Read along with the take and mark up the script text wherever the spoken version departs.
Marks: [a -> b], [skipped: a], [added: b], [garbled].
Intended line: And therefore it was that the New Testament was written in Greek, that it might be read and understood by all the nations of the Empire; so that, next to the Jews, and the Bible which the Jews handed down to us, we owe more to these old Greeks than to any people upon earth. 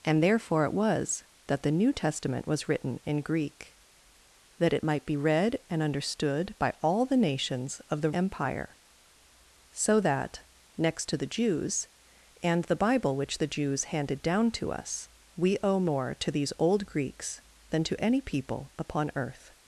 And therefore it was that the New Testament was written in Greek, that it might be read and understood by all the nations of the Empire; so that, next to the Jews, and the Bible which the Jews handed down to us, we owe more to these old Greeks than to any people upon earth.